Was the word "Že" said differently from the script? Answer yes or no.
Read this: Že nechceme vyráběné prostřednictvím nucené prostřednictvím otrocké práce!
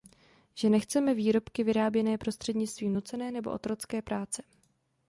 no